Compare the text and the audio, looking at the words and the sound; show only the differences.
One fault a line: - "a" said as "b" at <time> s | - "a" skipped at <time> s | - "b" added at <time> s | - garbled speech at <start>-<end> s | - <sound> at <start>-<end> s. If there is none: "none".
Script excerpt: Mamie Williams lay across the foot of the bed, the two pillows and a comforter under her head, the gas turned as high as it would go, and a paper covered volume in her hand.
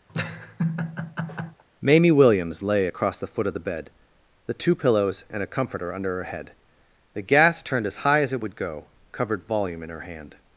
- laugh at 0.1-1.6 s
- "and a paper" skipped at 8.9 s